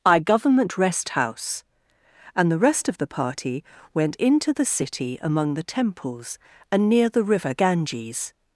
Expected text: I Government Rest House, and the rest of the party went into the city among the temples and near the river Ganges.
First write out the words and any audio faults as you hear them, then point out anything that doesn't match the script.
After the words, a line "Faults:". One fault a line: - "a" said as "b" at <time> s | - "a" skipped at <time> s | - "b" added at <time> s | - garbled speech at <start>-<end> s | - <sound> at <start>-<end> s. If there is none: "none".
I Government Rest House, and the rest of the party went into the city among the temples and near the river Ganges.
Faults:
none